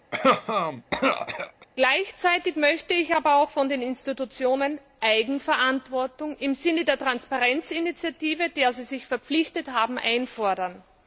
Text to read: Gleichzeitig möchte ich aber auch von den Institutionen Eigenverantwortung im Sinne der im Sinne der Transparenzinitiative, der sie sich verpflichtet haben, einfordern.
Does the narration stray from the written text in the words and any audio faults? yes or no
yes